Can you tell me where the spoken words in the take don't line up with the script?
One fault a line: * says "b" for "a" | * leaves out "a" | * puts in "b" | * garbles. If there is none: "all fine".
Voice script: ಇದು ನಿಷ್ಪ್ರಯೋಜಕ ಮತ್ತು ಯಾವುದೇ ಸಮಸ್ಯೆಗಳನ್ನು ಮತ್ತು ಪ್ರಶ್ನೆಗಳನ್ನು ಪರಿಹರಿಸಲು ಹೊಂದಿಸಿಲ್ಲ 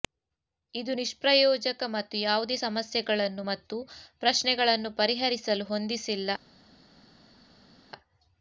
all fine